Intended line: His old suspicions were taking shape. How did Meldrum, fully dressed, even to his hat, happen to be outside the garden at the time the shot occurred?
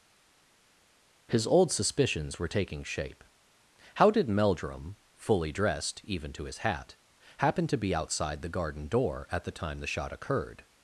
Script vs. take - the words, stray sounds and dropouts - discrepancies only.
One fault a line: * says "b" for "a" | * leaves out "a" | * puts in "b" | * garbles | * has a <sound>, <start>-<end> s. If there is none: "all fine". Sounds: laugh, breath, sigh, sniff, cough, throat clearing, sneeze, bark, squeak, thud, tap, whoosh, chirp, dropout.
* puts in "door"